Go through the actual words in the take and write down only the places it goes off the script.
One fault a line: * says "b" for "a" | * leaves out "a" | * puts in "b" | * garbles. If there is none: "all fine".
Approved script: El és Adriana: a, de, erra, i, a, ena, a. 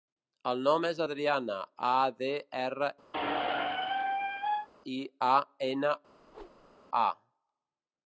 * puts in "nom"